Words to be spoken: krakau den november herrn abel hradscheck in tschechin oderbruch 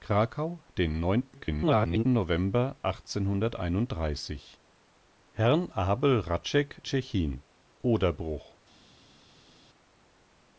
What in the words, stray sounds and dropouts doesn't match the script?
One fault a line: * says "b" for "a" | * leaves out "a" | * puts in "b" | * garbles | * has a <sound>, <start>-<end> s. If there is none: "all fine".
* garbles
* leaves out "in"